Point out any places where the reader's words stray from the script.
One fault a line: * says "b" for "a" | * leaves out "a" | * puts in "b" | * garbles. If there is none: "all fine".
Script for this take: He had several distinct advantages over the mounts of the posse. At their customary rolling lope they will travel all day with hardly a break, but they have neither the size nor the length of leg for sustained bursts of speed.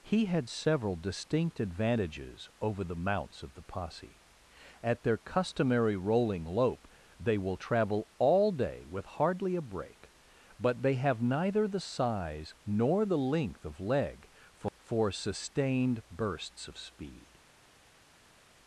* puts in "for"